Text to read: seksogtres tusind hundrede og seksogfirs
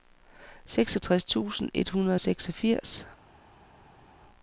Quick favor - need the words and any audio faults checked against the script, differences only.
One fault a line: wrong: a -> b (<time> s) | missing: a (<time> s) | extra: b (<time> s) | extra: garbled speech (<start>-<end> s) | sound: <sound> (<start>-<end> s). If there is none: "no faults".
extra: et (1.7 s)